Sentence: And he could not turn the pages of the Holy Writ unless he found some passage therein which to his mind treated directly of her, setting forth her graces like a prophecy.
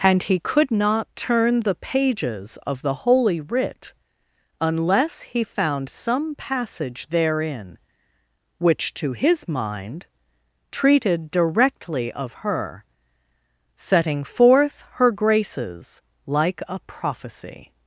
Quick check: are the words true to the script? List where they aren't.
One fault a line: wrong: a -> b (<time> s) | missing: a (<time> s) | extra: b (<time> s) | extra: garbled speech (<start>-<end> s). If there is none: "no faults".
no faults